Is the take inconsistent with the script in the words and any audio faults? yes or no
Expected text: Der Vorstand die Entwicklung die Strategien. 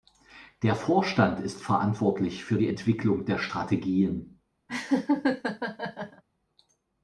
yes